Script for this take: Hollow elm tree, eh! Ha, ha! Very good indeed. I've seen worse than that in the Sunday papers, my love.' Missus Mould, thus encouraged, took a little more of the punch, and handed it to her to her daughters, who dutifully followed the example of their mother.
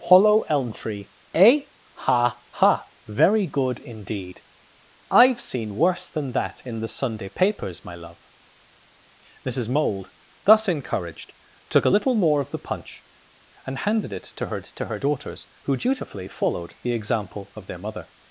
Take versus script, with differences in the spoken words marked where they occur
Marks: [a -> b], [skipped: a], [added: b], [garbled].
Hollow elm tree, eh! Ha, ha! Very good indeed. I've seen worse than that in the Sunday papers, my love.' Missus Mould, thus encouraged, took a little more of the punch, and handed it to her to her daughters, who dutifully followed the example of their mother.